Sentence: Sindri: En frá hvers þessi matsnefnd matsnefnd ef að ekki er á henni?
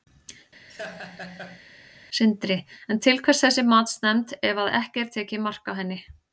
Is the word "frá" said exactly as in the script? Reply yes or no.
no